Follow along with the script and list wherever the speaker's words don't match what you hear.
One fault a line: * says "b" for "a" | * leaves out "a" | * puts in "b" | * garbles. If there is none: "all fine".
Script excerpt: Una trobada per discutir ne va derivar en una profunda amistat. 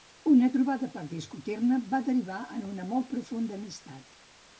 * puts in "molt"